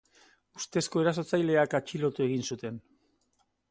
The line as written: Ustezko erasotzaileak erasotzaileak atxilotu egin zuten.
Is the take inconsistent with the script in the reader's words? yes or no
yes